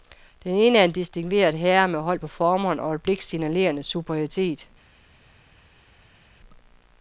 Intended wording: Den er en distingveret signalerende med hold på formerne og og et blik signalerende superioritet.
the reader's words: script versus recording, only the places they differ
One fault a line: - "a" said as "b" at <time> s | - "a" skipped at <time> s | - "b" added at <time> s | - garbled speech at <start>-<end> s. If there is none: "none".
- "ene" added at 0.6 s
- "signalerende" said as "herre" at 1.5 s
- "og" skipped at 2.9 s